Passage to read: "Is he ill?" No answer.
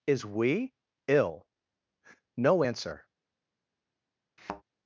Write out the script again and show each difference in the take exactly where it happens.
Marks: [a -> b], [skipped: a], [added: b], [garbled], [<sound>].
"Is [he -> we] ill?" No answer. [thud]